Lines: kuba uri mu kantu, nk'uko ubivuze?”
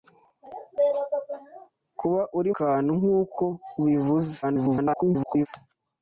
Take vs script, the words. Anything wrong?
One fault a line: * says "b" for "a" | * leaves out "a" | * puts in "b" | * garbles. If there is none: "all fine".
* leaves out "mu"
* garbles